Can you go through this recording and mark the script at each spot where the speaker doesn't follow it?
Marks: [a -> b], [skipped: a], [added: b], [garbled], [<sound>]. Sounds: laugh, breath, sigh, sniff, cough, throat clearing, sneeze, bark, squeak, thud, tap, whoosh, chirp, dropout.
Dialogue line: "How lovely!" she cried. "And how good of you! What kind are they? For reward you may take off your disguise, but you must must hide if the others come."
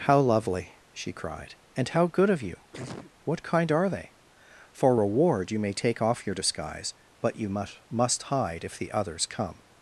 "How lovely!" she cried. "And how good of you! [sneeze] What kind are they? For reward you may take off your disguise, but you must must hide if the others come."